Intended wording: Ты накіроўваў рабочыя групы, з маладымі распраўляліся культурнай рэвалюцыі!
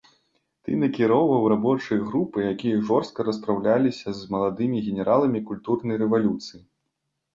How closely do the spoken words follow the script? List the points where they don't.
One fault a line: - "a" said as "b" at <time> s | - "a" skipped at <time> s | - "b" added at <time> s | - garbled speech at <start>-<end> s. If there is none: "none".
- "якія жорстка распраўляліся" added at 2.5 s
- "распраўляліся" said as "генераламі" at 4.9 s